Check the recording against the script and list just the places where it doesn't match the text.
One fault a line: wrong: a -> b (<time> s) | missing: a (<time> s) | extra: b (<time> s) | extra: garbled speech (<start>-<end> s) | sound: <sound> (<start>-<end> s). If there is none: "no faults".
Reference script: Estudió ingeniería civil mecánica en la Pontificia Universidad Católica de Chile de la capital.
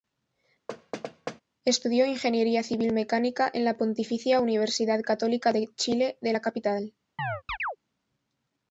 sound: thud (0.7-1.4 s)
sound: chirp (7.2-7.8 s)